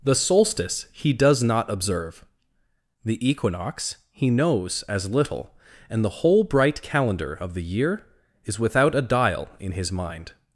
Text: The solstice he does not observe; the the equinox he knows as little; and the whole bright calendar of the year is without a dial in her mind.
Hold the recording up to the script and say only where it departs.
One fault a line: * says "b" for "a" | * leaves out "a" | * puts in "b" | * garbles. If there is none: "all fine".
* leaves out "the"
* says "his" for "her"